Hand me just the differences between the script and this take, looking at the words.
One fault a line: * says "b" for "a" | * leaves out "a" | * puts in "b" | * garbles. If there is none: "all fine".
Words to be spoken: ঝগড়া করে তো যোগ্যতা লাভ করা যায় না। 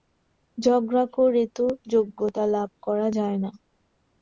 all fine